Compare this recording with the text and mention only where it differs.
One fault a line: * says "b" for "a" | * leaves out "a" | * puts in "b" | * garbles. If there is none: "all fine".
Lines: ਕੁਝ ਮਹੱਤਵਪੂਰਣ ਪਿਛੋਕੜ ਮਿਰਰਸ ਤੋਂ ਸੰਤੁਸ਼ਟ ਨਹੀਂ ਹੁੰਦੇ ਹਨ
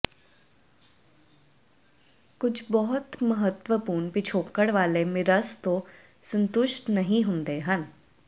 * puts in "ਬਹੁਤ"
* puts in "ਵਾਲੇ"